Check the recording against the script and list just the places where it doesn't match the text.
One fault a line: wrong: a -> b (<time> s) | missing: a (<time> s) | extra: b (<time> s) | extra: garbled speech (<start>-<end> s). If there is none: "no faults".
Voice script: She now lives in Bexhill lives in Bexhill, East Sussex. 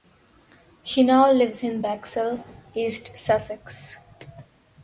missing: lives in Bexhill (2.4 s)